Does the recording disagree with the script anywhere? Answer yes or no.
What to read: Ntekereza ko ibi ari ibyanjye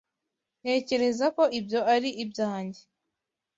yes